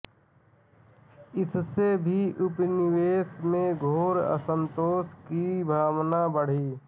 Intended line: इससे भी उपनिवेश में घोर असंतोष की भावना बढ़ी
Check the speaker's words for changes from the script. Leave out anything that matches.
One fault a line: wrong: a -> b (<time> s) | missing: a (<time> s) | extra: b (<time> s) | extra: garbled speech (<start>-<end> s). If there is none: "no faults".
no faults